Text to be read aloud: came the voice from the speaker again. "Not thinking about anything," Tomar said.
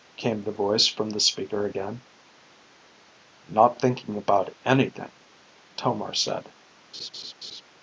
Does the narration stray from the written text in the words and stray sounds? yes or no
yes